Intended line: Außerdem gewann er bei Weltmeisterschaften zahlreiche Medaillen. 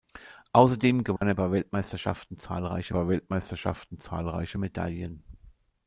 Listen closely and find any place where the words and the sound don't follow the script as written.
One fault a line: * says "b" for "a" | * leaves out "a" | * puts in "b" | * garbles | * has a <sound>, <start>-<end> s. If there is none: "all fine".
* has a dropout, 1.2-1.2 s
* puts in "bei Weltmeisterschaften zahlreiche"